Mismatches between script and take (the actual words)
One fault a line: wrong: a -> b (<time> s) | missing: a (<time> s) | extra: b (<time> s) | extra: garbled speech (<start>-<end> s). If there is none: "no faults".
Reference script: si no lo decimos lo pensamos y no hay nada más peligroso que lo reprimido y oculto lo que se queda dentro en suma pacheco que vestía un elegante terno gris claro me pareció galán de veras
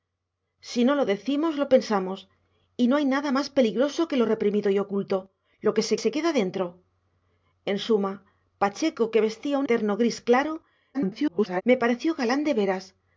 extra: se (6.0 s)
missing: elegante (9.7 s)
extra: garbled speech (10.9-11.6 s)